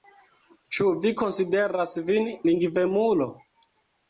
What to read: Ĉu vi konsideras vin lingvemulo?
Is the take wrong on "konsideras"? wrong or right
right